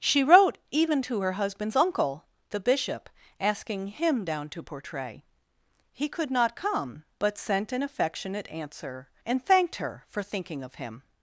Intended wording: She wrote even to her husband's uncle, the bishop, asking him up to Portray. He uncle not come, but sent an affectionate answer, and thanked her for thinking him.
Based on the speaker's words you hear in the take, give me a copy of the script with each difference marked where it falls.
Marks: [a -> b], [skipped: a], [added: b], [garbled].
She wrote even to her husband's uncle, the bishop, asking him [up -> down] to Portray. He [uncle -> could] not come, but sent an affectionate answer, and thanked her for thinking [added: of] him.